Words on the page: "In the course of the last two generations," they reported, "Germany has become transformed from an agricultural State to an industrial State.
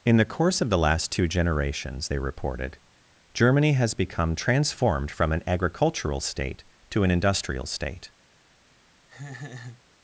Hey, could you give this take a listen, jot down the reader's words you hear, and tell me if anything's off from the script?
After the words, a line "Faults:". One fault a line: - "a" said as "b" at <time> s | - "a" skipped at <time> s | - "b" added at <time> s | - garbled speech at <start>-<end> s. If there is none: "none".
"In the course of the last two generations," they reported, "Germany has become transformed from an agricultural State to an industrial State.
Faults:
none